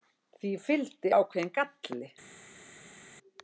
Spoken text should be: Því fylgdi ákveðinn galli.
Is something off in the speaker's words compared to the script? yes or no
no